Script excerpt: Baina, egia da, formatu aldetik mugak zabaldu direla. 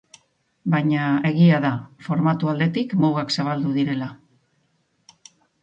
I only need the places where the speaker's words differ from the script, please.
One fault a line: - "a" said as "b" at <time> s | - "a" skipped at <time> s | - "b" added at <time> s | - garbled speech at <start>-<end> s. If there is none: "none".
none